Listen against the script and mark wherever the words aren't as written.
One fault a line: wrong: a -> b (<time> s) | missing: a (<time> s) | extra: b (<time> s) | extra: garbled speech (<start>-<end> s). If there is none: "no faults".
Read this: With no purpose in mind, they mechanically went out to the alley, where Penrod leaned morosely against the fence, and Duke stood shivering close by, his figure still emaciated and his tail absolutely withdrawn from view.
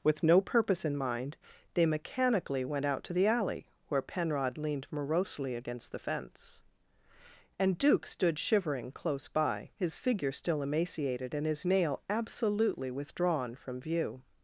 wrong: tail -> nail (11.7 s)